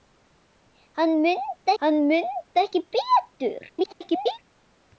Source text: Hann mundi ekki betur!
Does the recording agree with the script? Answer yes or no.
no